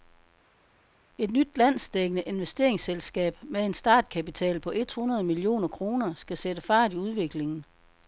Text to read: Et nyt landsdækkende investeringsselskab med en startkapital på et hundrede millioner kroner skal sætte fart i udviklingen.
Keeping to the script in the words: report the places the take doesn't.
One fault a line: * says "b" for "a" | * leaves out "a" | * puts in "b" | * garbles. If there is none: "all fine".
all fine